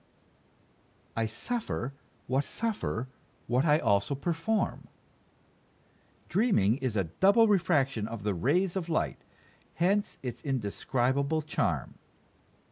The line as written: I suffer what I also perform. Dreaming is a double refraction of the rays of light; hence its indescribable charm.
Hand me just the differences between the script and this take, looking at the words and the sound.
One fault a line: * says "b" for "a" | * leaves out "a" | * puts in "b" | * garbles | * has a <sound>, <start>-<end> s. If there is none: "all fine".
* puts in "suffer what"